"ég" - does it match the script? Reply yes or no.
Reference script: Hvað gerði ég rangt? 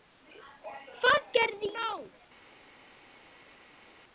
no